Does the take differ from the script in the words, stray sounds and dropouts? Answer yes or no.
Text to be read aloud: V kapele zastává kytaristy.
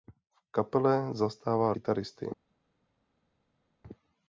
no